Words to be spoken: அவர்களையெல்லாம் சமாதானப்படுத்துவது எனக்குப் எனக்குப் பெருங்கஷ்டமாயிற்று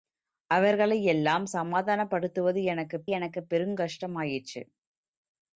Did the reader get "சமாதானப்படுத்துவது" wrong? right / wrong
right